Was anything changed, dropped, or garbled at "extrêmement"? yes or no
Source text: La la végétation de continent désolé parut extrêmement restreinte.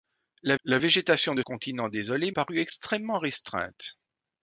no